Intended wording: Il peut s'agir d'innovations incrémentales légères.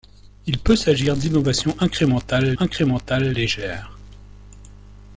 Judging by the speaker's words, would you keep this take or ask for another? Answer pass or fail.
fail